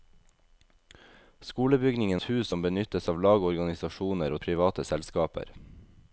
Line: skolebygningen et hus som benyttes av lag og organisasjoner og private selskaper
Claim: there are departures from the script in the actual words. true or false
false